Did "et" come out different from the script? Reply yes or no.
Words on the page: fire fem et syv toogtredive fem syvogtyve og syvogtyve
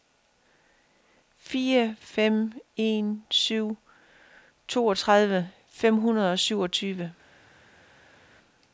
yes